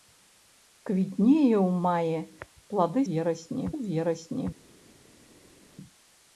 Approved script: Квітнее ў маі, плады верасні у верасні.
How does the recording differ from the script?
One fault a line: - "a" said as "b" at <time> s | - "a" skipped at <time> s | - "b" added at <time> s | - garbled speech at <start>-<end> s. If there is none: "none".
none